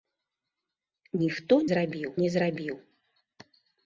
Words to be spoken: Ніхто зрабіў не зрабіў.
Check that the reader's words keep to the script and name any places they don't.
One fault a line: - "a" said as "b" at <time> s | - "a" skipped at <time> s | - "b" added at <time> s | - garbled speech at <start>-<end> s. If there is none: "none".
none